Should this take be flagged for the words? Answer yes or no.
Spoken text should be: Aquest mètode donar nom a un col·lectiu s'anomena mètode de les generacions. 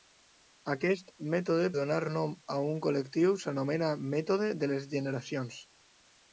no